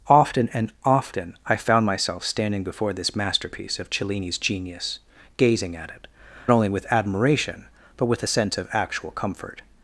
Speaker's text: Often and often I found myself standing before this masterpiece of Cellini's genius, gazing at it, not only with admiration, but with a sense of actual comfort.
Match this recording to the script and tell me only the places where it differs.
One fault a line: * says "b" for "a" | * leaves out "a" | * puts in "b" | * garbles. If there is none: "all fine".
* leaves out "not"